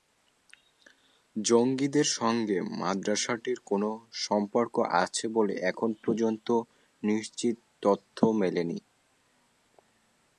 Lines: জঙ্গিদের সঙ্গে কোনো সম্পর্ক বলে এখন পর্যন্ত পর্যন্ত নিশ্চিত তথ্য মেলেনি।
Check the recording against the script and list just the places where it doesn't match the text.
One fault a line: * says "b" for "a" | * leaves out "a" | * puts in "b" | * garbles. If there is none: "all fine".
* puts in "মাদ্রাসাটির"
* puts in "আছে"
* leaves out "পর্যন্ত"